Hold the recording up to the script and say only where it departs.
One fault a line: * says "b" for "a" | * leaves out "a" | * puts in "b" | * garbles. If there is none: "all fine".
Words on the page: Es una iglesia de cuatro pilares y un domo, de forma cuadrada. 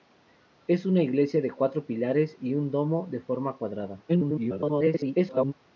* garbles